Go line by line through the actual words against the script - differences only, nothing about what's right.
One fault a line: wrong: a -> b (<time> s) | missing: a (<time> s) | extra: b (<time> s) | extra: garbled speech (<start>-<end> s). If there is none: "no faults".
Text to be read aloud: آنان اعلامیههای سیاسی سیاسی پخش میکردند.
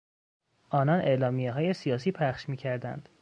missing: سیاسی (2.1 s)